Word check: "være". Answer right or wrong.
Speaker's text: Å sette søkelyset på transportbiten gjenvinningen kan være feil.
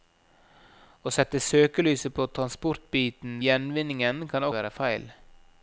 right